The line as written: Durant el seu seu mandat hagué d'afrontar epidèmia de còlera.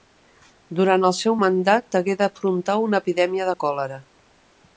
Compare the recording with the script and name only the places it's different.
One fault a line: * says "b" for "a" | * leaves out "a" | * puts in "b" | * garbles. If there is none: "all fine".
* leaves out "seu"
* puts in "una"